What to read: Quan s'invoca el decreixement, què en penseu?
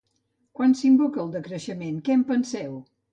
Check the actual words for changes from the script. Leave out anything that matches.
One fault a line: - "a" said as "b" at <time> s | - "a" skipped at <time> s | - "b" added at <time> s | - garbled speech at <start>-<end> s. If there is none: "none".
none